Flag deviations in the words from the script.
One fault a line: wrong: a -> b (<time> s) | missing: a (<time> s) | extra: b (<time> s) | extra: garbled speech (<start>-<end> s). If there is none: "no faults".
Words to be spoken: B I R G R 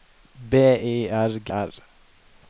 no faults